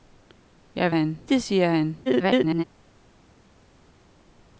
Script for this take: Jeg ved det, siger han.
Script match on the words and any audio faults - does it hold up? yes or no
no